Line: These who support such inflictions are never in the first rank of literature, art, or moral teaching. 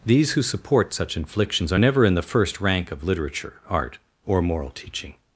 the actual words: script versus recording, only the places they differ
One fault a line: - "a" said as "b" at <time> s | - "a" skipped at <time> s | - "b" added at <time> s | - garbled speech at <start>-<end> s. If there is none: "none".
none